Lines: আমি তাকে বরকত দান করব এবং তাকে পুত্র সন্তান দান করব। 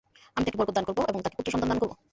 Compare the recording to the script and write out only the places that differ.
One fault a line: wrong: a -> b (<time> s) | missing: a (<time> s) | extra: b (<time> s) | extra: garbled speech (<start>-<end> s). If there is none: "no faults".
no faults